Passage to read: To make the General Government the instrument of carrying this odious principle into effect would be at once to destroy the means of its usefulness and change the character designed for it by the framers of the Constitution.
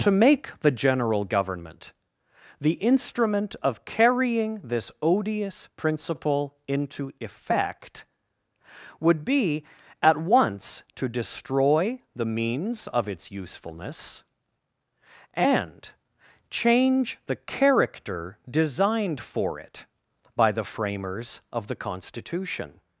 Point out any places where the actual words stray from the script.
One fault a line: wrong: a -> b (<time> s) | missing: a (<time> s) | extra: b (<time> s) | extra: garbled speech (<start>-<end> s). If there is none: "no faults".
no faults